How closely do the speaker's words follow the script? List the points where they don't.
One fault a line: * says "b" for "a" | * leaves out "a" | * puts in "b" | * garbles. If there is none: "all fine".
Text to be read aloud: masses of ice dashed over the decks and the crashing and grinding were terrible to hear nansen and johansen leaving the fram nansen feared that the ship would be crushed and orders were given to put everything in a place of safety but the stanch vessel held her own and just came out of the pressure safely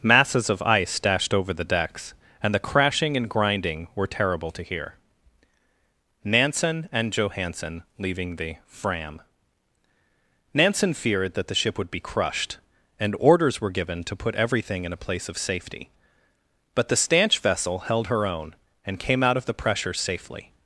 * leaves out "just"